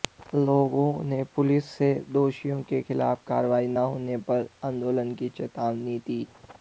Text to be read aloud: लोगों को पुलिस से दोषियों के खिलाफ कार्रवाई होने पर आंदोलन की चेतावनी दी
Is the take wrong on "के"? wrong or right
right